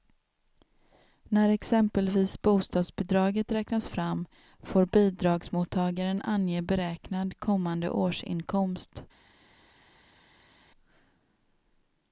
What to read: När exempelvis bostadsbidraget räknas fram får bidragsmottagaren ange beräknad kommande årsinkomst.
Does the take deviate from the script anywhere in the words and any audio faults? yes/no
no